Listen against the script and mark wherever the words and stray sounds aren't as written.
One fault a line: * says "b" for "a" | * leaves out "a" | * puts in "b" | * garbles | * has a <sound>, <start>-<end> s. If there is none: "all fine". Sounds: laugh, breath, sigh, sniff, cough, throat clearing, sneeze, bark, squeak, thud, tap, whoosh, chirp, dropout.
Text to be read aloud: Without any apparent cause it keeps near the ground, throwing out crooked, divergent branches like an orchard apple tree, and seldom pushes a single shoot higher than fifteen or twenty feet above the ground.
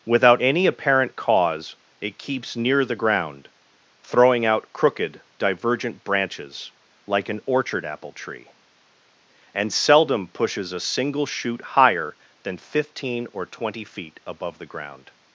all fine